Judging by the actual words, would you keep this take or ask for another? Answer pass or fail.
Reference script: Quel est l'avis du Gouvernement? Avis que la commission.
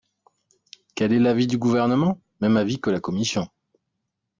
fail